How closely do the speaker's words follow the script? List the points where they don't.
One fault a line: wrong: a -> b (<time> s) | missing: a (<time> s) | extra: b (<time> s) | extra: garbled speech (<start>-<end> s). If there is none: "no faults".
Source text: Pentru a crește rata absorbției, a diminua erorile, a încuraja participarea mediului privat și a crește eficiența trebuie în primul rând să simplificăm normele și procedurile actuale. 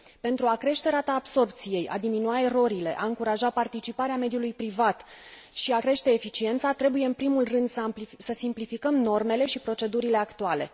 no faults